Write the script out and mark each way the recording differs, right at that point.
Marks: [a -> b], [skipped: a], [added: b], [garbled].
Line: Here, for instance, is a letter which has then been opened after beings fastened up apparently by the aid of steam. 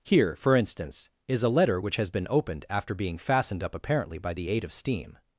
Here, for instance, is a letter which has [skipped: then] been opened after [beings -> being] fastened up apparently by the aid of steam.